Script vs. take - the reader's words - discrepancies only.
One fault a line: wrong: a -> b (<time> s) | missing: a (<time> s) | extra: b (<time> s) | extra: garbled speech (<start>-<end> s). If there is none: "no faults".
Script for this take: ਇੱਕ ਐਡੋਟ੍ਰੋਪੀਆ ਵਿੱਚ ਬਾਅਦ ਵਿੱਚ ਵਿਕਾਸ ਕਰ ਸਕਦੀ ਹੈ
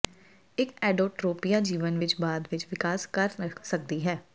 extra: ਜੀਵਨ (1.6 s)